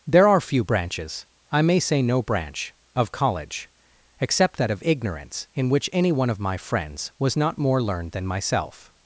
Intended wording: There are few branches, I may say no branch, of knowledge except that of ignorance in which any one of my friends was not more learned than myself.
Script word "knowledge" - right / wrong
wrong